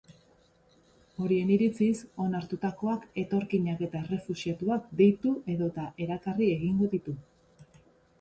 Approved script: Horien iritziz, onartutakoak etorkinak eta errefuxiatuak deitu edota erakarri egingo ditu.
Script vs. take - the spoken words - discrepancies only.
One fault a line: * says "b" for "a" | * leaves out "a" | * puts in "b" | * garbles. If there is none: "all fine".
all fine